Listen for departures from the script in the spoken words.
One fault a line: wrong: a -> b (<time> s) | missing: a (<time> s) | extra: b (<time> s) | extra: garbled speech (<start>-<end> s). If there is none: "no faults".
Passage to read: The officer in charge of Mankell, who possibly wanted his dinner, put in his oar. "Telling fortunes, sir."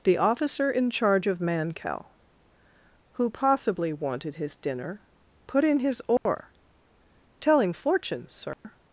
no faults